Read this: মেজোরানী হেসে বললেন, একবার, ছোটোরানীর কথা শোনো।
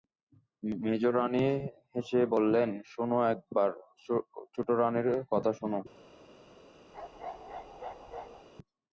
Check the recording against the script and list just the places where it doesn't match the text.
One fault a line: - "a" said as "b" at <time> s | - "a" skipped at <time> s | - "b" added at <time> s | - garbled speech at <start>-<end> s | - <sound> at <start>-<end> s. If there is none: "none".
- "শোনো" added at 2.8 s
- bark at 6.9-8.5 s